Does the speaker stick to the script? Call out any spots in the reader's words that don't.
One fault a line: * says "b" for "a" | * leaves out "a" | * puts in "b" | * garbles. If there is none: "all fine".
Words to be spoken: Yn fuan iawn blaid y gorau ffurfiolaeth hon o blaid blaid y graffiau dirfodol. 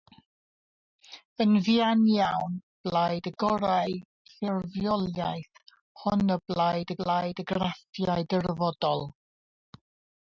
all fine